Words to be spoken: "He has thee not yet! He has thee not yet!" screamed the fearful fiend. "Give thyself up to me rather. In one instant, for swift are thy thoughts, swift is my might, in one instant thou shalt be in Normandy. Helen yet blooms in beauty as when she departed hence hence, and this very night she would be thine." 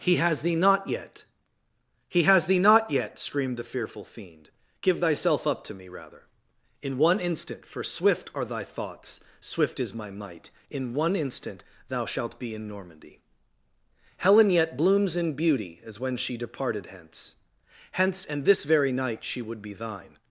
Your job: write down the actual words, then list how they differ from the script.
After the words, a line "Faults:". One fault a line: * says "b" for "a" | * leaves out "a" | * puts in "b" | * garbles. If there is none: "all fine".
"He has thee not yet! He has thee not yet!" screamed the fearful fiend. "Give thyself up to me rather. In one instant, for swift are thy thoughts, swift is my might, in one instant thou shalt be in Normandy. Helen yet blooms in beauty as when she departed hence hence, and this very night she would be thine."
Faults:
all fine